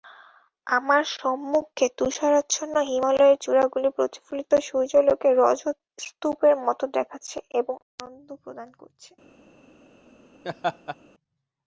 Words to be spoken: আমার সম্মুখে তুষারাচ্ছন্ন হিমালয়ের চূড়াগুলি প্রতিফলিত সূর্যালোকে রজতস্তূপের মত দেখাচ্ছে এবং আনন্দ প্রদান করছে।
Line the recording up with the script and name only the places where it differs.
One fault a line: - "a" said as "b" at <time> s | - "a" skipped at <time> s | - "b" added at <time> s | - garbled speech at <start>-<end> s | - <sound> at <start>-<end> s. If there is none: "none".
- laugh at 10.4-11.0 s